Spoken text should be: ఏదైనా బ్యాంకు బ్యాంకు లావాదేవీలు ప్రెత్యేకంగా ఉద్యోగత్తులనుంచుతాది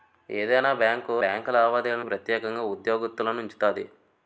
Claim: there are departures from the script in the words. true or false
false